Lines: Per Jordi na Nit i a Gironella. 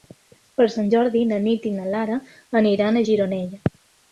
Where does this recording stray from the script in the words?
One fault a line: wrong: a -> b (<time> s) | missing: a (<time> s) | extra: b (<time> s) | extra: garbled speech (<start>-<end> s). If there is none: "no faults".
extra: Sant (0.8 s)
extra: na Lara aniran (1.7 s)